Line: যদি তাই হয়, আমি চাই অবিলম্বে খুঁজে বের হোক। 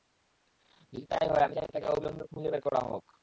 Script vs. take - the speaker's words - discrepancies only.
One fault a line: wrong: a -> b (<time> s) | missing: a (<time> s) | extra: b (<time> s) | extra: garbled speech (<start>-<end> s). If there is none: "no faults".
extra: তাকে (1.7 s)
extra: করা (2.6 s)